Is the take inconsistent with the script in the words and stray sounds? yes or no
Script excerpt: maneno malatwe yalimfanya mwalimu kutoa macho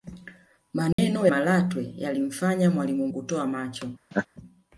yes